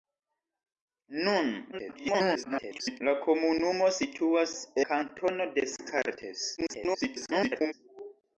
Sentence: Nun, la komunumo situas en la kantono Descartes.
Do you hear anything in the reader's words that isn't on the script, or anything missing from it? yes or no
yes